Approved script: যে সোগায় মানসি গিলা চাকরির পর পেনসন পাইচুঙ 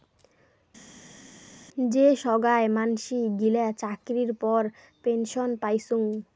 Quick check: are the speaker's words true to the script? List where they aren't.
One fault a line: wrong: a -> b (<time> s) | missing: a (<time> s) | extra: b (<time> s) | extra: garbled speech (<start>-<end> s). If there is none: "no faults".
no faults